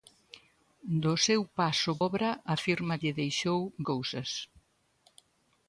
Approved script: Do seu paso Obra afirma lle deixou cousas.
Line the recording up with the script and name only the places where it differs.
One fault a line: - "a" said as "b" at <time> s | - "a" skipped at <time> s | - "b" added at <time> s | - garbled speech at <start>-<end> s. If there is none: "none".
none